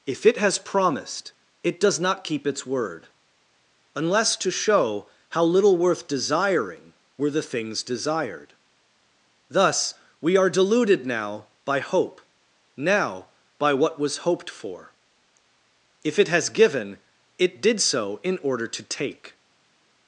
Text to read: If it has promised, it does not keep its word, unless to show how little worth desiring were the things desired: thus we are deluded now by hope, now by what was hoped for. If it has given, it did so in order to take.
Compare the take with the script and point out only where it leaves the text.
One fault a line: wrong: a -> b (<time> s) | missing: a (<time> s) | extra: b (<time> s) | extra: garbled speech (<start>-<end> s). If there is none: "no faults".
no faults